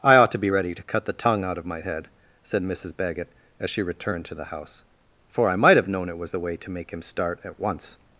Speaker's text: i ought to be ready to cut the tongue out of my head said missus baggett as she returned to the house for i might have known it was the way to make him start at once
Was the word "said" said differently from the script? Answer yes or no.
no